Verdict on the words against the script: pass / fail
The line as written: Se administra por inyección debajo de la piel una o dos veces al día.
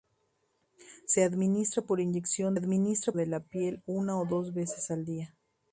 fail